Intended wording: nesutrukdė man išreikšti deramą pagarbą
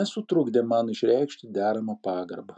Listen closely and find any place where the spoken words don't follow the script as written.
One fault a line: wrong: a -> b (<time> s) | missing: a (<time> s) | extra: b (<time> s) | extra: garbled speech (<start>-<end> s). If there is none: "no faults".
no faults